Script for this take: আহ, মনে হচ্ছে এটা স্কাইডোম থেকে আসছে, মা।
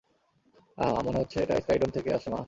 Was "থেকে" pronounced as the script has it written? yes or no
yes